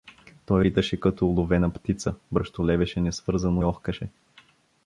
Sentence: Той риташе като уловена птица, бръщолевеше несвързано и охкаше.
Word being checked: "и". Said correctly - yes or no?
no